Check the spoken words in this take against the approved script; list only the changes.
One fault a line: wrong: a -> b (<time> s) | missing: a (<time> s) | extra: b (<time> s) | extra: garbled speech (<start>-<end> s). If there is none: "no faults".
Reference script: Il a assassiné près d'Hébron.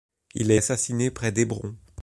no faults